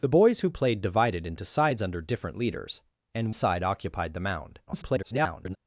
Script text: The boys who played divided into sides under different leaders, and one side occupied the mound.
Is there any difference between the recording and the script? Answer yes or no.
yes